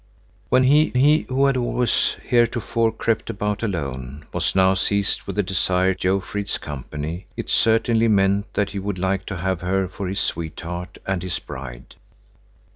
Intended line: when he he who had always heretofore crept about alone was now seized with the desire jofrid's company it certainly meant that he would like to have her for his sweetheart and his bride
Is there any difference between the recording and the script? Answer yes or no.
no